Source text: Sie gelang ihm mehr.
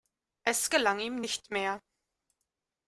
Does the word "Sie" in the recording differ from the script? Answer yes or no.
yes